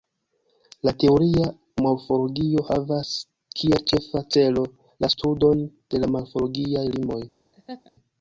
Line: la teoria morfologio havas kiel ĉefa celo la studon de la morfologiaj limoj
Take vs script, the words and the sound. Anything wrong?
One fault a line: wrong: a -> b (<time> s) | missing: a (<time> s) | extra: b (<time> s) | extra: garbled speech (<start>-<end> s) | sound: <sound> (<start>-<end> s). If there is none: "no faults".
sound: laugh (7.5-7.9 s)